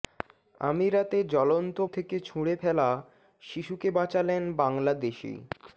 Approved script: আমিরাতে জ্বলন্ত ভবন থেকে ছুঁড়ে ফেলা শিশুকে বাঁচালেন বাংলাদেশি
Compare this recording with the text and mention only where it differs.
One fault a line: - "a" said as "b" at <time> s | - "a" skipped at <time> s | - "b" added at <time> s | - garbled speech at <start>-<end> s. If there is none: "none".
- "ভবন" skipped at 1.8 s